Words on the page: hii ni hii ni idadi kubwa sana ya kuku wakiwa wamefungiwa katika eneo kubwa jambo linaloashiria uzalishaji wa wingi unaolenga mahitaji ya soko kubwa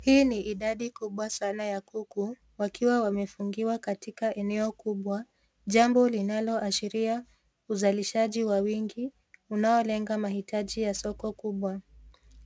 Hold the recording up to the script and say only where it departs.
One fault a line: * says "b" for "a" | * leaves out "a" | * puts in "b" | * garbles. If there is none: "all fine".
* leaves out "hii ni"